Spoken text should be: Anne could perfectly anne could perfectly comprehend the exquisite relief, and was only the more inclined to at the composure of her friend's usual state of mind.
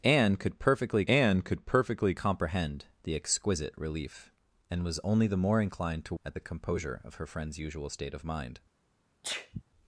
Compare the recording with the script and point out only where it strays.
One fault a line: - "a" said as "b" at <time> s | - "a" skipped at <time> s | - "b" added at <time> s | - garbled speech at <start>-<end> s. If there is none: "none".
none